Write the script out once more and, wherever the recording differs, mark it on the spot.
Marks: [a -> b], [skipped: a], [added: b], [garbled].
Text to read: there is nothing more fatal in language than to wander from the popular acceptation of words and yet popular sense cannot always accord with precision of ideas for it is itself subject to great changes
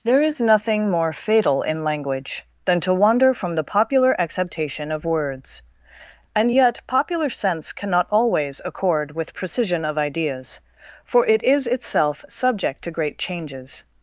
there is nothing more fatal in language than to wander from the popular acceptation of words and yet popular sense cannot always accord with precision of ideas for it is itself subject to great changes